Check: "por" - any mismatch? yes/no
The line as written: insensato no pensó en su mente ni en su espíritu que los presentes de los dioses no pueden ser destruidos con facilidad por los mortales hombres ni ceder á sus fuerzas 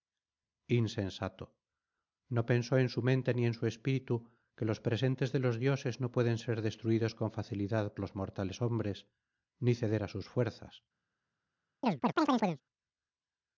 yes